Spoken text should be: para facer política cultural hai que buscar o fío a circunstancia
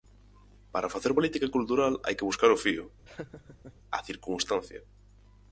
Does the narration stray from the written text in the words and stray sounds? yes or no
yes